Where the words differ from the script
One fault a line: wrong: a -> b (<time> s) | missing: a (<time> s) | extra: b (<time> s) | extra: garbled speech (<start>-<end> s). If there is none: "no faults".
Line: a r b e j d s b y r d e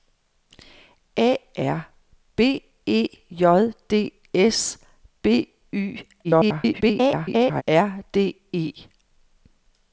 extra: garbled speech (6.2-7.6 s)